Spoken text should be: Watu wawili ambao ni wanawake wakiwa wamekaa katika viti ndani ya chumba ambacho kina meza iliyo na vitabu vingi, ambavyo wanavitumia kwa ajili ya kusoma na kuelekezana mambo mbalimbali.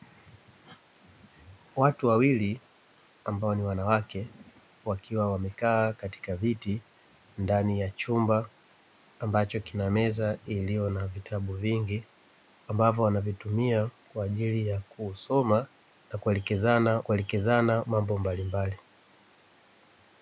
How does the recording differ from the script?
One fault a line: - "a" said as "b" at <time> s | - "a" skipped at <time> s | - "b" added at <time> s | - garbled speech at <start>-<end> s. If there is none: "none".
- "kuelekezana" added at 17.0 s